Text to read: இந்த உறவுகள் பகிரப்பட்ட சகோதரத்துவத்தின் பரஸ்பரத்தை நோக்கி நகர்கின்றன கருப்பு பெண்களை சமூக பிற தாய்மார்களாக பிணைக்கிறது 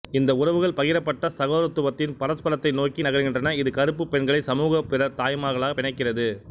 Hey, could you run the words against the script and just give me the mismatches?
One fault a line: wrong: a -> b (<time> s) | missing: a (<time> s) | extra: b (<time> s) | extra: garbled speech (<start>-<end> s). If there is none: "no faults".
extra: இது (3.5 s)